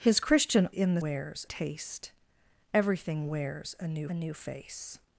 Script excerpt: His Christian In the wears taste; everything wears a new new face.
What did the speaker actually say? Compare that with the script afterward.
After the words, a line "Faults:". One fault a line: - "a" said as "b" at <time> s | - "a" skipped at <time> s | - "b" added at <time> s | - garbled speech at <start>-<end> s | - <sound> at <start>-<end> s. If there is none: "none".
His Christian In the wears taste; everything wears a new new face.
Faults:
none